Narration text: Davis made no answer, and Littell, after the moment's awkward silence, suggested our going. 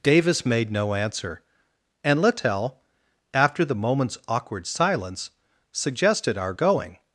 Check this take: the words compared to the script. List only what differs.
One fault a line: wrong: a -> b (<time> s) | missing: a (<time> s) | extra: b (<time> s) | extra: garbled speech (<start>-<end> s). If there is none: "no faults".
no faults